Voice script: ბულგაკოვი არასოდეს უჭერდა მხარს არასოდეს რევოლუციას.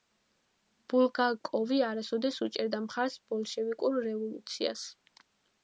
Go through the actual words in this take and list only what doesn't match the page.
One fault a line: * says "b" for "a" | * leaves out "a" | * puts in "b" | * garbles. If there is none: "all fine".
* says "ბოლშევიკურ" for "არასოდეს"